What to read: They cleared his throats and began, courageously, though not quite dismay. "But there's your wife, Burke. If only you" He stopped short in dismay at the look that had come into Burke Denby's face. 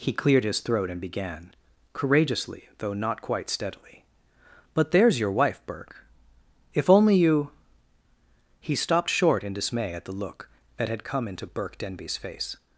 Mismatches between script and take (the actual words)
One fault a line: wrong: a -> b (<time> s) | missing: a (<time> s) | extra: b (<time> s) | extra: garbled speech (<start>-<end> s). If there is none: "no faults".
wrong: They -> He (0.0 s)
wrong: throats -> throat (0.6 s)
wrong: dismay -> steadily (3.5 s)